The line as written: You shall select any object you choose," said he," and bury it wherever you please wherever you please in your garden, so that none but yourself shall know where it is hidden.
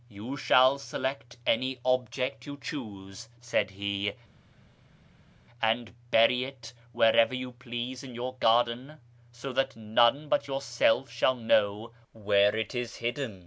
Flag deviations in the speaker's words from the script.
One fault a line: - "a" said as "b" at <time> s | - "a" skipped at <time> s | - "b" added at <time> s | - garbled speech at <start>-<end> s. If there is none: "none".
- "wherever you please" skipped at 8.0 s